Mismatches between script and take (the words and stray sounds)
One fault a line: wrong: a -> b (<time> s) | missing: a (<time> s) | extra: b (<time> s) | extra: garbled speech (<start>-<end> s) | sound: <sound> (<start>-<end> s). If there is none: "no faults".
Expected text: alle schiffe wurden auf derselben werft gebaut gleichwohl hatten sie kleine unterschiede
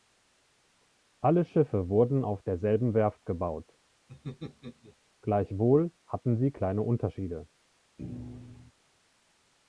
sound: laugh (4.1-5.0 s)
sound: thud (8.0-8.7 s)